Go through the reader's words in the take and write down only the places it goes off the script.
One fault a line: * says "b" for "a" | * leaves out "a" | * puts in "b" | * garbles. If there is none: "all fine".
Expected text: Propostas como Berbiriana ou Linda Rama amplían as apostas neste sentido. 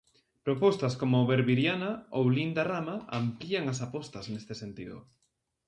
all fine